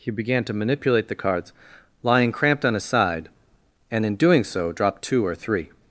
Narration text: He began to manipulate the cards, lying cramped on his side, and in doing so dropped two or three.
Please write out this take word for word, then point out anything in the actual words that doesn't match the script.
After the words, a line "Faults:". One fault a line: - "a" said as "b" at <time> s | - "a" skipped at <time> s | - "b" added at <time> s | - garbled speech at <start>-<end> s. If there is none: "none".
He began to manipulate the cards, lying cramped on his side, and in doing so dropped two or three.
Faults:
none